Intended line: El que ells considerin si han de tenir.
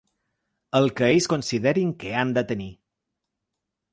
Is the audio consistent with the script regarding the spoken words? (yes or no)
no